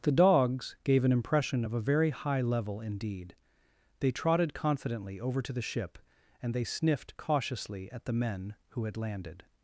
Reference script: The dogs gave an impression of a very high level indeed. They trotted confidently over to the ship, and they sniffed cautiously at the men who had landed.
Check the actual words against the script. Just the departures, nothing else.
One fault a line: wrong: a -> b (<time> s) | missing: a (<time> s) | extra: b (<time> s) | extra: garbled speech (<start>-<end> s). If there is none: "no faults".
no faults